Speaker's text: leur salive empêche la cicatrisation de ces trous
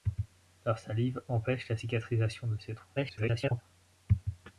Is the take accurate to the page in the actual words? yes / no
no